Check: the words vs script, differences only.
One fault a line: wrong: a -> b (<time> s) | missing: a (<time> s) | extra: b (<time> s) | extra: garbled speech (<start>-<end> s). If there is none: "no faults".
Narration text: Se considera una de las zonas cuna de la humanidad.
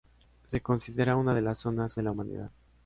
missing: cuna (1.9 s)